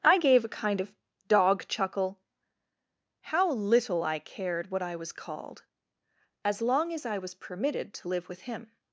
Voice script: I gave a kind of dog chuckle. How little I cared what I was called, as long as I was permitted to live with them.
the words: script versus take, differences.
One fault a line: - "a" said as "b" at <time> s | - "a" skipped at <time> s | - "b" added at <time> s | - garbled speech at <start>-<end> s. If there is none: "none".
- "them" said as "him" at 8.4 s